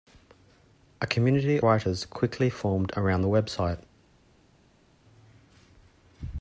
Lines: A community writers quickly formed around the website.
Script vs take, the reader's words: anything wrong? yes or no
no